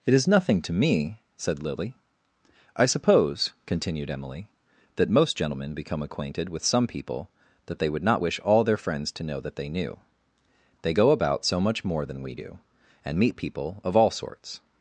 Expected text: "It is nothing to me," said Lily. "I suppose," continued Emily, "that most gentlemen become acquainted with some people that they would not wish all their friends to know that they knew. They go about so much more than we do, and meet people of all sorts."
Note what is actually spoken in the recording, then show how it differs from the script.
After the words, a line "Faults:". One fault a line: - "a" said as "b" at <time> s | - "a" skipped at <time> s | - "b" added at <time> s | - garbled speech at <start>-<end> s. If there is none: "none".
"It is nothing to me," said Lily. "I suppose," continued Emily, "that most gentlemen become acquainted with some people that they would not wish all their friends to know that they knew. They go about so much more than we do, and meet people of all sorts."
Faults:
none